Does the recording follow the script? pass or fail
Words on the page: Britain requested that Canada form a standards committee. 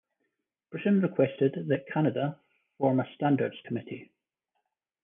pass